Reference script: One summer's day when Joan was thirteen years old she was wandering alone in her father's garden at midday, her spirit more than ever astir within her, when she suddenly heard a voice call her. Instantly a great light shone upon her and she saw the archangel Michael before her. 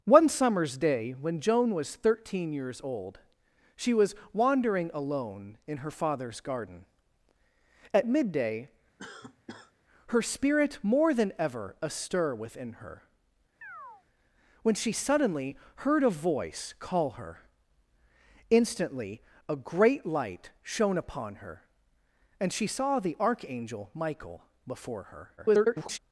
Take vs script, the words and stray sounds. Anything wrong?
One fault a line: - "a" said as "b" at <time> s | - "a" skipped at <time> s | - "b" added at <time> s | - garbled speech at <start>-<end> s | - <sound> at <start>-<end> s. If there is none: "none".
- cough at 9.0-9.7 s
- chirp at 13.6-14.0 s
- garbled speech at 25.4-26.0 s